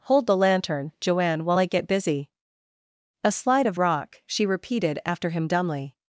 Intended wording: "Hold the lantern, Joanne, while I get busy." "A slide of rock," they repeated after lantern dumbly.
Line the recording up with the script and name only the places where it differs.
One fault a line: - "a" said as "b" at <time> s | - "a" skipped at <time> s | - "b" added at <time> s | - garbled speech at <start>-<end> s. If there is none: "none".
- "they" said as "she" at 4.3 s
- "lantern" said as "him" at 5.3 s